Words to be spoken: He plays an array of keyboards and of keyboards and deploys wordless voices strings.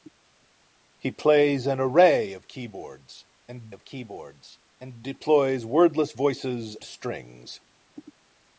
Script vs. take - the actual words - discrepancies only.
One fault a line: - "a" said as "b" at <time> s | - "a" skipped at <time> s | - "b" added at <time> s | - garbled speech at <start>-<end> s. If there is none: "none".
none